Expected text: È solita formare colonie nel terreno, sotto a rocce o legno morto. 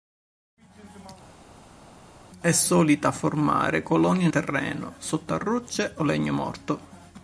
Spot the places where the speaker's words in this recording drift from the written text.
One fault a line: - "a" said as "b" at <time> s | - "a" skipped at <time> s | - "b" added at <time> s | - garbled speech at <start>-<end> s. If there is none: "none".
- "nel" skipped at 4.3 s